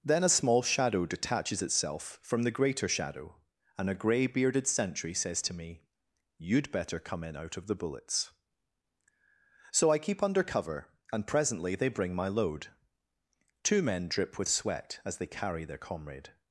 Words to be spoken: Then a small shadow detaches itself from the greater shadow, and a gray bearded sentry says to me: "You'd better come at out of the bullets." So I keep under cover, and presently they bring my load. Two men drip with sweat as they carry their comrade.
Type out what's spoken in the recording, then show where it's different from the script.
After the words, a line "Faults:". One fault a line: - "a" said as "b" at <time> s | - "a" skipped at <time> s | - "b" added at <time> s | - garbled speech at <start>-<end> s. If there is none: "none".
Then a small shadow detaches itself from the greater shadow, and a gray bearded sentry says to me: "You'd better come in out of the bullets." So I keep under cover, and presently they bring my load. Two men drip with sweat as they carry their comrade.
Faults:
- "at" said as "in" at 7.2 s